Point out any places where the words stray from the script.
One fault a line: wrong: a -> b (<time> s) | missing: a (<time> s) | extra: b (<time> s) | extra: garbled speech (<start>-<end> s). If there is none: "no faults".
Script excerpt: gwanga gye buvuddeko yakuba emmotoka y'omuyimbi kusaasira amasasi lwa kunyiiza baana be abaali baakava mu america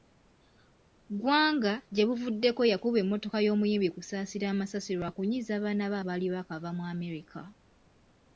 no faults